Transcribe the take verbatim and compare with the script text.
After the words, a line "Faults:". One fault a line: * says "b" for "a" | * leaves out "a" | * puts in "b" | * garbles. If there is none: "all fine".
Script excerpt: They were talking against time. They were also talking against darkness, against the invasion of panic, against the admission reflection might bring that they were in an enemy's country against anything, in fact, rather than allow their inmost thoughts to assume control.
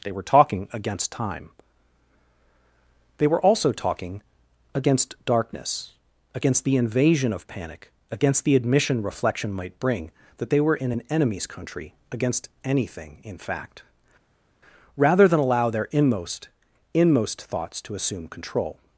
They were talking against time. They were also talking against darkness, against the invasion of panic, against the admission reflection might bring that they were in an enemy's country against anything, in fact, rather than allow their inmost inmost thoughts to assume control.
Faults:
* puts in "inmost"